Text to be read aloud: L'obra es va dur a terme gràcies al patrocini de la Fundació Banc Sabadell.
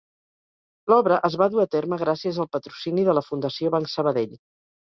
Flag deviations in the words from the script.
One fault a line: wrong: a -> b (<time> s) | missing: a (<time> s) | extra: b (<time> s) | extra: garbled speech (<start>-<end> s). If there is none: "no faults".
no faults